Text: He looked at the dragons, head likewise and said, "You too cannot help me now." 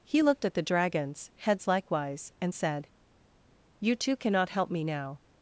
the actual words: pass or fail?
fail